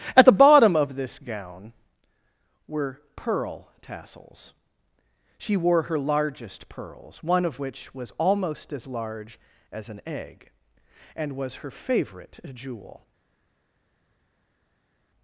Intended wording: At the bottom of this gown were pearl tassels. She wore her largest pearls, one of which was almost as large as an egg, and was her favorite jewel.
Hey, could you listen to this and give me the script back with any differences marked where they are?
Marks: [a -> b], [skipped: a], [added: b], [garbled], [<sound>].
At the bottom of this gown were pearl tassels. She wore her largest pearls, one of which was almost as large as an egg, and was her favorite jewel.